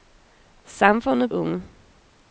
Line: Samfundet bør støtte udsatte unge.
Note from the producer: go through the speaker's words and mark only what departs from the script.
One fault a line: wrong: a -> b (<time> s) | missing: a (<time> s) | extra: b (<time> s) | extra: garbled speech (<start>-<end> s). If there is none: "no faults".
missing: bør støtte udsatte (1.3 s)